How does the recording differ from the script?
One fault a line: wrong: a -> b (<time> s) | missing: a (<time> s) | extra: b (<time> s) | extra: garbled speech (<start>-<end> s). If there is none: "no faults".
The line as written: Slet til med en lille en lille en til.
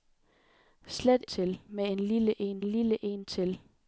no faults